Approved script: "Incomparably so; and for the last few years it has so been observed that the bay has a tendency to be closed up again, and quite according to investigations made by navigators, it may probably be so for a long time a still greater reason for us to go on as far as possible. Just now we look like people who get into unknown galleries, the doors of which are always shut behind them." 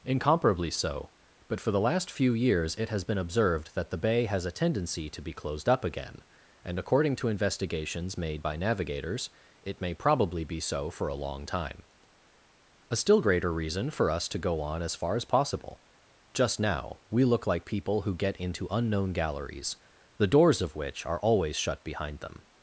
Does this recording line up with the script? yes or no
no